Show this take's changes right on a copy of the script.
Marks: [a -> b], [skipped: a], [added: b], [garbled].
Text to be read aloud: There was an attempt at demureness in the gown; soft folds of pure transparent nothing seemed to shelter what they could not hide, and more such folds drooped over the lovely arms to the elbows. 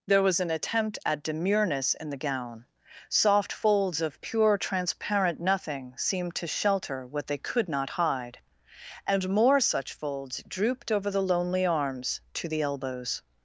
There was an attempt at demureness in the gown; soft folds of pure transparent nothing seemed to shelter what they could not hide, and more such folds drooped over the [lovely -> lonely] arms to the elbows.